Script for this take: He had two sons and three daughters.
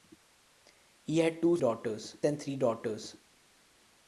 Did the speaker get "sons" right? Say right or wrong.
wrong